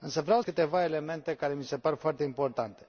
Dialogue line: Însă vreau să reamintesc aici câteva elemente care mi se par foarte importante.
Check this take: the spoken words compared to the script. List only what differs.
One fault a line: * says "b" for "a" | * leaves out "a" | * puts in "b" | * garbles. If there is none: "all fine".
* leaves out "să reamintesc aici"